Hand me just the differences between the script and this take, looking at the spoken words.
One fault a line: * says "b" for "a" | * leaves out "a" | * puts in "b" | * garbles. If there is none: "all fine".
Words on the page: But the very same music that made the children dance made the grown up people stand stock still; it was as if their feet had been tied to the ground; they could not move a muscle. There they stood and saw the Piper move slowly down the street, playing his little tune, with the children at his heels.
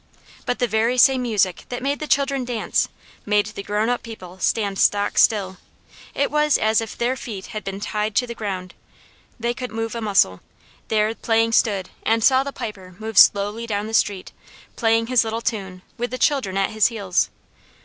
* leaves out "not"
* says "playing" for "they"